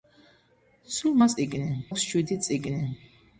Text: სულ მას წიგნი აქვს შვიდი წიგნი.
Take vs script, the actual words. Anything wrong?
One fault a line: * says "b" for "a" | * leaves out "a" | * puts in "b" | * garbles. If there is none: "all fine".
all fine